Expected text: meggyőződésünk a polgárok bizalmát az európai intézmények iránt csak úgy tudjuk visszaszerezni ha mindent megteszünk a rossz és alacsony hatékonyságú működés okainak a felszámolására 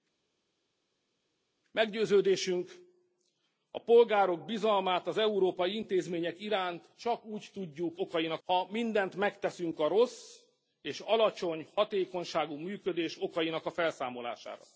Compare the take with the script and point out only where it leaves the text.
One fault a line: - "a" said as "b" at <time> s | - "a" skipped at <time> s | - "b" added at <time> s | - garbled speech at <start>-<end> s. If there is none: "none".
- "visszaszerezni" said as "okainak" at 8.0 s